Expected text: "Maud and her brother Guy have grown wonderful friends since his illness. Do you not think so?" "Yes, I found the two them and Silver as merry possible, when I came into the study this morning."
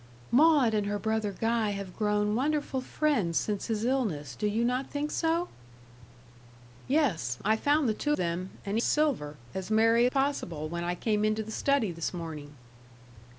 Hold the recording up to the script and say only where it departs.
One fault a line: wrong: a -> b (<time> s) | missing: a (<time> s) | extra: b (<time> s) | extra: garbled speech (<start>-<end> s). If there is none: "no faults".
no faults